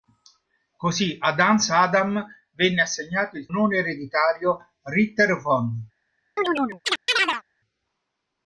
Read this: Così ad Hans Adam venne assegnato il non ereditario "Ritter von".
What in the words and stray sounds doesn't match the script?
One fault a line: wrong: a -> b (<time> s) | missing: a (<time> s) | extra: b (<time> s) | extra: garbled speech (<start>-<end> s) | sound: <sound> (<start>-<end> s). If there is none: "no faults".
sound: chirp (6.4-7.4 s)